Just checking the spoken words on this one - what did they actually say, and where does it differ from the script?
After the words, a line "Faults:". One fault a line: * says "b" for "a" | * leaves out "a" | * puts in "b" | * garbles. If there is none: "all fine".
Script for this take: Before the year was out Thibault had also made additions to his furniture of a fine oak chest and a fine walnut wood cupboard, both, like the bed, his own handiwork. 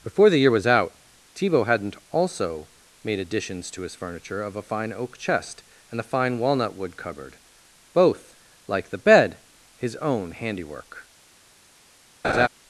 Before the year was out Thibault hadn't also made additions to his furniture of a fine oak chest and a fine walnut wood cupboard, both, like the bed, his own handiwork.
Faults:
* says "hadn't" for "had"